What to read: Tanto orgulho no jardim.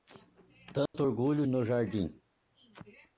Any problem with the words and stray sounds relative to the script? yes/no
yes